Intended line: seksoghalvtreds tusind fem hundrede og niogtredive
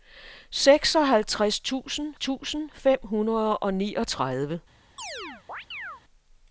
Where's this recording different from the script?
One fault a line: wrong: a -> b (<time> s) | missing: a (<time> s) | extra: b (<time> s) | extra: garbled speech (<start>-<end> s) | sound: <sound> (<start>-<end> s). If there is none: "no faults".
extra: tusind (2.2 s)
sound: chirp (5.0-6.0 s)